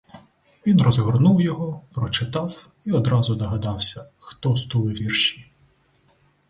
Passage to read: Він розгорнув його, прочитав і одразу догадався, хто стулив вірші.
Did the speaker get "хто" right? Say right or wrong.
right